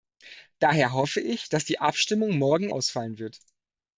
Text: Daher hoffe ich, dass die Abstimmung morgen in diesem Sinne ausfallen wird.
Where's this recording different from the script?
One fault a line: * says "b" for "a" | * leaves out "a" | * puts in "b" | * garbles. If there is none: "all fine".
* leaves out "in diesem Sinne"